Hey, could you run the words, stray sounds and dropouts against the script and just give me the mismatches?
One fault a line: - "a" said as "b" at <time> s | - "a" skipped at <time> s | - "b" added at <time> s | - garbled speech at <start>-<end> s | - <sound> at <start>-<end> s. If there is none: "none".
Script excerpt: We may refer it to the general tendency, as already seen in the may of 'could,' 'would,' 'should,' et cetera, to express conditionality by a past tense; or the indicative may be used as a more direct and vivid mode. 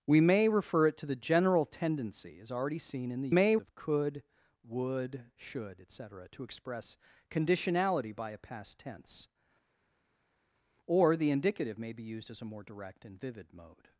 none